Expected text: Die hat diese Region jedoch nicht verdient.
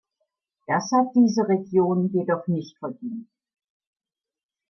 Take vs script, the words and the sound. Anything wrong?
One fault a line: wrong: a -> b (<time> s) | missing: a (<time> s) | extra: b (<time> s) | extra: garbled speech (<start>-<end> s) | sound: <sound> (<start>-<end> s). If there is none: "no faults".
wrong: Die -> Das (0.7 s)